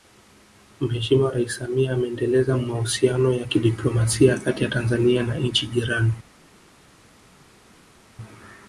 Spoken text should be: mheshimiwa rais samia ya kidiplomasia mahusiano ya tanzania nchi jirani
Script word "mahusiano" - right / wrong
wrong